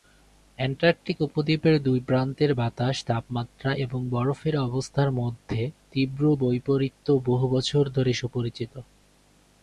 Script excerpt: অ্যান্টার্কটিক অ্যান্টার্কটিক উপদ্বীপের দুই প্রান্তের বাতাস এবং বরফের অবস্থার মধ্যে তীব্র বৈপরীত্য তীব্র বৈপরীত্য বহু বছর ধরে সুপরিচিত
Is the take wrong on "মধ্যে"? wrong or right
right